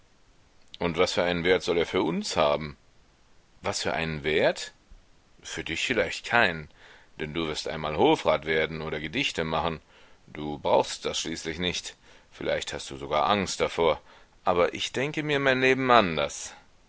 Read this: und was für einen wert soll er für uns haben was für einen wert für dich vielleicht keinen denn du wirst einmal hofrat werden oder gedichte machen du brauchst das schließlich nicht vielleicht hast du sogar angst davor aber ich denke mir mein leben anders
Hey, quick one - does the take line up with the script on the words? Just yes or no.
yes